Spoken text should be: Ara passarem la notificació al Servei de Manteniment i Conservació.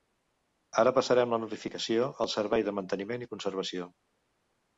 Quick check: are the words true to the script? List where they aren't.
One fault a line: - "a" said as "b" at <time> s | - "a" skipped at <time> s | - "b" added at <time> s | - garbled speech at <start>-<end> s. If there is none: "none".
none